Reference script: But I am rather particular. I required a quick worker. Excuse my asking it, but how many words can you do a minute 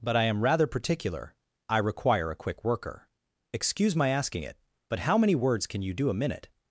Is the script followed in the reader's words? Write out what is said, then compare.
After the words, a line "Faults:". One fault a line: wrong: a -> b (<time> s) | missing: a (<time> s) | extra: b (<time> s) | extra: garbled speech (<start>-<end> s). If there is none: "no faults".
But I am rather particular. I require a quick worker. Excuse my asking it, but how many words can you do a minute
Faults:
wrong: required -> require (1.8 s)